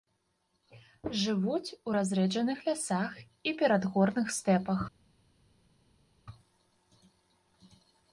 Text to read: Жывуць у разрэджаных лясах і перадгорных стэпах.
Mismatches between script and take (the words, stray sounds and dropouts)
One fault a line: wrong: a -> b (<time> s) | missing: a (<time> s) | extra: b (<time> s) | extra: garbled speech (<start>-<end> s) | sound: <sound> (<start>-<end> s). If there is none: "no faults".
no faults